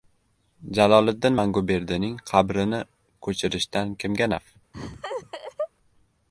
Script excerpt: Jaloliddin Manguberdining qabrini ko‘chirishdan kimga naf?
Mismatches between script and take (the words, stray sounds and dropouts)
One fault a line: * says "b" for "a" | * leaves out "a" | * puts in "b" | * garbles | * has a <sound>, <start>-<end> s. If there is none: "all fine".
* has a laugh, 4.7-5.7 s